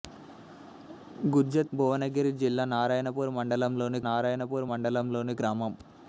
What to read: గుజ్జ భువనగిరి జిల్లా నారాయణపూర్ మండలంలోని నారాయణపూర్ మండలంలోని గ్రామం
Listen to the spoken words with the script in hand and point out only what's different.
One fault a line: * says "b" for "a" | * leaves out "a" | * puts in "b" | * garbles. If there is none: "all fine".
all fine